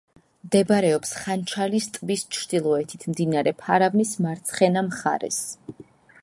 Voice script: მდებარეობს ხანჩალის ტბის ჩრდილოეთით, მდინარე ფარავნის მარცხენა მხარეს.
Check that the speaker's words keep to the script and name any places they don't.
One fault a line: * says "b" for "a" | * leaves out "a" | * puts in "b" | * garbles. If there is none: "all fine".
all fine